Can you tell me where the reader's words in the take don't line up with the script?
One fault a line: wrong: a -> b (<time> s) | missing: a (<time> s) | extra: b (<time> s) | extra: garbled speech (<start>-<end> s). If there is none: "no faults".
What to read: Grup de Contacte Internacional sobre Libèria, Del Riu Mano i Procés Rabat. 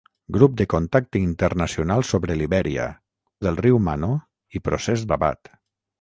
no faults